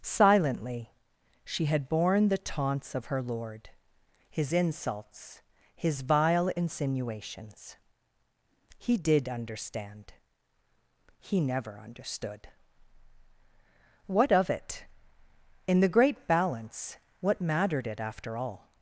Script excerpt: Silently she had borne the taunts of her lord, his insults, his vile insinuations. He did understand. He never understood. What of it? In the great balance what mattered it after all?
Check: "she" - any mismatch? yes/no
no